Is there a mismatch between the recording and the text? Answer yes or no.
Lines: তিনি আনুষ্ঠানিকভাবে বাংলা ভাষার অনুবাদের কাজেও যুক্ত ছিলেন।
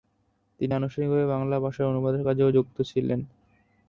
no